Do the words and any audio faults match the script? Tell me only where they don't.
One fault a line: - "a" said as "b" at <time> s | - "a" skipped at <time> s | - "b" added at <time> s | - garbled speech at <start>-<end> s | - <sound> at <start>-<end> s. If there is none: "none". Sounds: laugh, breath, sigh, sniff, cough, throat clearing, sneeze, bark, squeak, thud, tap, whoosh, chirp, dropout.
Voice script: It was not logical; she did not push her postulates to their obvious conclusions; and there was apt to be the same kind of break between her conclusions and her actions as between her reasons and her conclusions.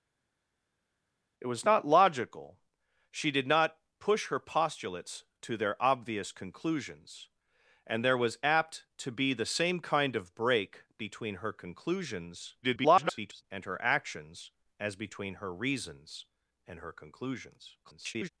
- garbled speech at 12.6-13.4 s
- garbled speech at 17.8-18.3 s